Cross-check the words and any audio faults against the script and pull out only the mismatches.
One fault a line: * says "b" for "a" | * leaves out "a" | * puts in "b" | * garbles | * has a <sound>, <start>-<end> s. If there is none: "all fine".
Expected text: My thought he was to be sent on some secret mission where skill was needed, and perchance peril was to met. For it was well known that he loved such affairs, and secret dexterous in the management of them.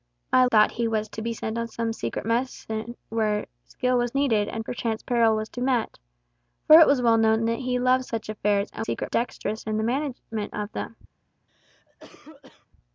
* has a cough, 11.5-12.7 s